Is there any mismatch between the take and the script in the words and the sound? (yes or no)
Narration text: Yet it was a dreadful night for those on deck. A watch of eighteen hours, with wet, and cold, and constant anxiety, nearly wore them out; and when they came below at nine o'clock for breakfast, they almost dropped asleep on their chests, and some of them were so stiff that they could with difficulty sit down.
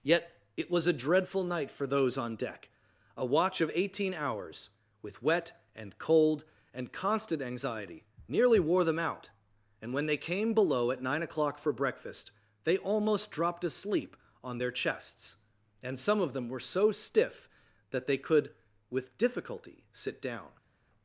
no